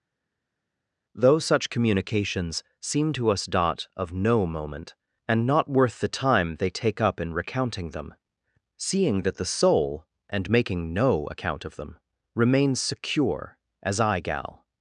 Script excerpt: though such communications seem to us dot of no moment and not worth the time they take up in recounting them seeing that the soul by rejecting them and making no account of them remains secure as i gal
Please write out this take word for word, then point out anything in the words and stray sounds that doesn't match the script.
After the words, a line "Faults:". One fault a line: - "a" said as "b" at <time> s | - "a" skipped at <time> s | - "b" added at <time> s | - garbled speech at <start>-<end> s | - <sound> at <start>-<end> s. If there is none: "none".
though such communications seem to us dot of no moment and not worth the time they take up in recounting them seeing that the soul and making no account of them remains secure as i gal
Faults:
- "by rejecting them" skipped at 10.0 s